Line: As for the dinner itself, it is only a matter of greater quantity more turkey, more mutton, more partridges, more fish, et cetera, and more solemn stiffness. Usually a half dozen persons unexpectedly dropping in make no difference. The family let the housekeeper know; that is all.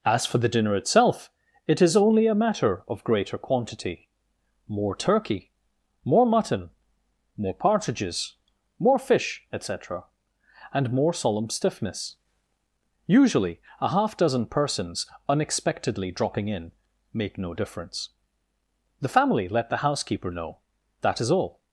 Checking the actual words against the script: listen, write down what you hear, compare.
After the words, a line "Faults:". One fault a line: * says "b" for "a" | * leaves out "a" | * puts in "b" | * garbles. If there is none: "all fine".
As for the dinner itself, it is only a matter of greater quantity more turkey, more mutton, more partridges, more fish, et cetera, and more solemn stiffness. Usually a half dozen persons unexpectedly dropping in make no difference. The family let the housekeeper know; that is all.
Faults:
all fine